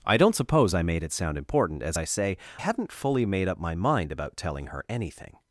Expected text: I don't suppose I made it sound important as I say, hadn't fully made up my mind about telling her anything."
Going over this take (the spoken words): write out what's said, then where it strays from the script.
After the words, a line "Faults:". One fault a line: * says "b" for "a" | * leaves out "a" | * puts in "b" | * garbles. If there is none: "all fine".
I don't suppose I made it sound important as I say, hadn't fully made up my mind about telling her anything."
Faults:
all fine